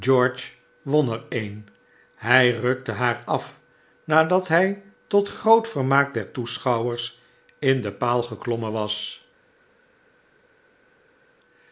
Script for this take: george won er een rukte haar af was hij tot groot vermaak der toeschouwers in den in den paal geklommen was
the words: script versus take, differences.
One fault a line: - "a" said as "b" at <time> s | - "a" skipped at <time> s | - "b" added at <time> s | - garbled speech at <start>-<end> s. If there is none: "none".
- "hij" added at 2.1 s
- "was" said as "nadat" at 4.0 s
- "in den" skipped at 8.0 s